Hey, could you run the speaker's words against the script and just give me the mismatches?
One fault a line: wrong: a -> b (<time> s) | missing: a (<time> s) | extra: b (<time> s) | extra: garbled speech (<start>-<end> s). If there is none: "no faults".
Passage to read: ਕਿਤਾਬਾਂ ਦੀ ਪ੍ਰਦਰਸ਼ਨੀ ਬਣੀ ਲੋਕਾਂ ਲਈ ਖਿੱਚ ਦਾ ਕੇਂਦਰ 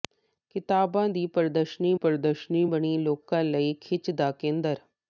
extra: ਪ੍ਰਦਰਸ਼ਨੀ (1.9 s)